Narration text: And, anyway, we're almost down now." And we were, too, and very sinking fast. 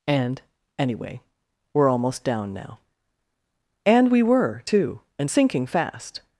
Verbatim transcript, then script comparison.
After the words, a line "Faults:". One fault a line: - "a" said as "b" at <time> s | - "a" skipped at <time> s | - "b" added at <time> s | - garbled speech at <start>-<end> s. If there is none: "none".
And, anyway, we're almost down now." And we were, too, and sinking fast.
Faults:
- "very" skipped at 5.3 s